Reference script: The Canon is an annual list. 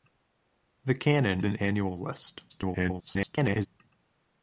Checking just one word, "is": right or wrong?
wrong